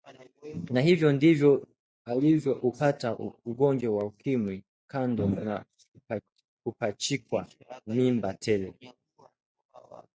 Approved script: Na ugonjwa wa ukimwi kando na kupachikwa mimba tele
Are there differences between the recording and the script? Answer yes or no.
yes